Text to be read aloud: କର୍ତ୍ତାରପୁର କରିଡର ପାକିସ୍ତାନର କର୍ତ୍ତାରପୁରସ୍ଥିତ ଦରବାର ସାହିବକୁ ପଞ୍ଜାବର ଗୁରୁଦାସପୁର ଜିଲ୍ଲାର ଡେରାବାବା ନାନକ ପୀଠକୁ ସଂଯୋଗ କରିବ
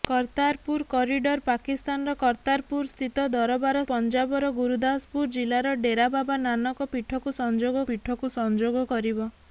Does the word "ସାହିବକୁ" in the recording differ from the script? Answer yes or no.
yes